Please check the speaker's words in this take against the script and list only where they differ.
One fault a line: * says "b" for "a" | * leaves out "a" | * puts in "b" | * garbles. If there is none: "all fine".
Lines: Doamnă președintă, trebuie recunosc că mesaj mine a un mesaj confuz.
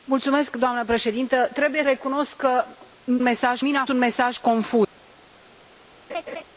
all fine